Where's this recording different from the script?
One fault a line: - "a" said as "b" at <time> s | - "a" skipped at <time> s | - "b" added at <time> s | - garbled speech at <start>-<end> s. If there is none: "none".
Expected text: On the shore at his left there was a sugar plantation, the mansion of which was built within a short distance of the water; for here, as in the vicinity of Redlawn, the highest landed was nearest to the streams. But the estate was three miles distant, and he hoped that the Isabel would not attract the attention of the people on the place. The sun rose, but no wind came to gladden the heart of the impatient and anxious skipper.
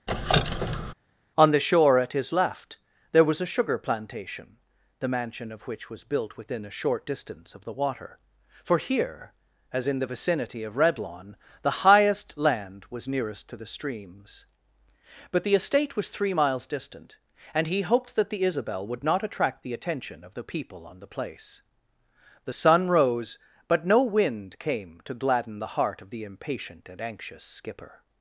- "landed" said as "land" at 12.4 s